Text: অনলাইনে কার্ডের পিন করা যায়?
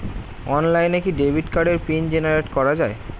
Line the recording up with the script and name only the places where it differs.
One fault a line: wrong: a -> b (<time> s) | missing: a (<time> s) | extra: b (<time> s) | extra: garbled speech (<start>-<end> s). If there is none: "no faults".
extra: কি ডেবিট (1.0 s)
extra: জেনারেট (2.1 s)